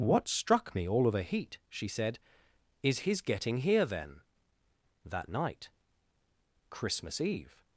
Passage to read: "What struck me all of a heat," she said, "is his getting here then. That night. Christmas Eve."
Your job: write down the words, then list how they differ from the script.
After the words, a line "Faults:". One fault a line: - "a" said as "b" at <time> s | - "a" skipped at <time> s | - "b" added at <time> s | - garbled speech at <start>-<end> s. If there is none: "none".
"What struck me all of a heat," she said, "is his getting here then. That night. Christmas Eve."
Faults:
none